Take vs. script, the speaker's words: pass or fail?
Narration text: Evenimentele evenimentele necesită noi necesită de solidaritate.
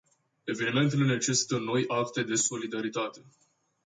fail